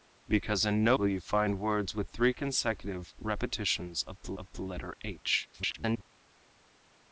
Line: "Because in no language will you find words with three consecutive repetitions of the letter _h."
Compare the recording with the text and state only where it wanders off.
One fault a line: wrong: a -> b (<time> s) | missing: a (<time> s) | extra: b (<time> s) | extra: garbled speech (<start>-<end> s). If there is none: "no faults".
missing: language (1.0 s)
extra: of the (4.3 s)
extra: garbled speech (5.5-6.0 s)